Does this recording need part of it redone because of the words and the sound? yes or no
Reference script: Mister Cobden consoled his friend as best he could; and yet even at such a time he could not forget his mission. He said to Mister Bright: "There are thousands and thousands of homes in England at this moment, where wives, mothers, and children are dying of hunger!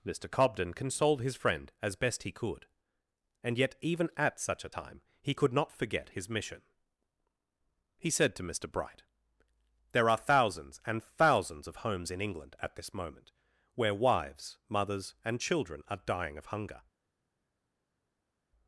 no